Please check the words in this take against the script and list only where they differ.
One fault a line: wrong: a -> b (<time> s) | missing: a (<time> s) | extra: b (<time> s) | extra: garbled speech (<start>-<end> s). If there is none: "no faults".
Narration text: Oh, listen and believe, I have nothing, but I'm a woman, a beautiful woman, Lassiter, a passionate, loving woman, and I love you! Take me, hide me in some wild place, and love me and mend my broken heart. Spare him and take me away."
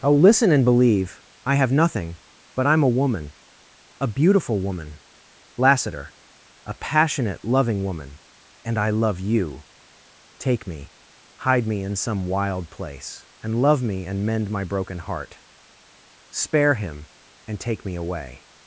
no faults